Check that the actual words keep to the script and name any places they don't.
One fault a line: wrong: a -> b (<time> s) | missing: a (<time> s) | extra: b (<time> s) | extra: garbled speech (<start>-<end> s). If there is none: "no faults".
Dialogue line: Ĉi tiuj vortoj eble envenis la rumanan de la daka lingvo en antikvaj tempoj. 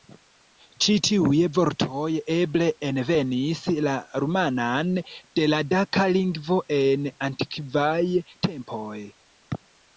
no faults